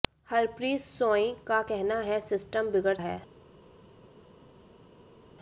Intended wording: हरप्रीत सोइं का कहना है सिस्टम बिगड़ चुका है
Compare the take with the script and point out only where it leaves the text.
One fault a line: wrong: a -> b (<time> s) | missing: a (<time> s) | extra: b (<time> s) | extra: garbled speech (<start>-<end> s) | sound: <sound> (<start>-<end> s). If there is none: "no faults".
missing: चुका (3.0 s)